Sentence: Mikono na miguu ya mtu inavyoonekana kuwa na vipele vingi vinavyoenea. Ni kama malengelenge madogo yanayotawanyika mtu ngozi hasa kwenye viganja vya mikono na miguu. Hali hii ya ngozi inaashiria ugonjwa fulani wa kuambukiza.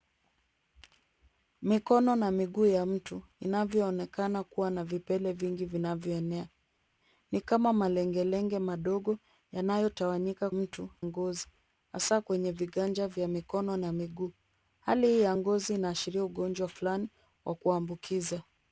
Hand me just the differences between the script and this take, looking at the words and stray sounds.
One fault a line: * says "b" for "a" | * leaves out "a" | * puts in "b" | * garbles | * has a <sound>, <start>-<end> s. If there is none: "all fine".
all fine